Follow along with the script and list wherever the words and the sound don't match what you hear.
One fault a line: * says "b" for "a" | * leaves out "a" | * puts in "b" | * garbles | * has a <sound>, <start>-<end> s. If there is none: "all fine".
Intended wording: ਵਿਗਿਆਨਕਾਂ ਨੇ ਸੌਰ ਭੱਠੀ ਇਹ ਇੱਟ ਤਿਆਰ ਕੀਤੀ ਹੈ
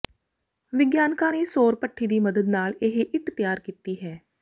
* puts in "ਦੀ ਮਦਦ ਨਾਲ"